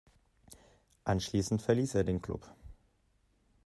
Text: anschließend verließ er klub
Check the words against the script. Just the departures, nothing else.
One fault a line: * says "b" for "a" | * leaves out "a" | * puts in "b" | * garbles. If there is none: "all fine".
* puts in "den"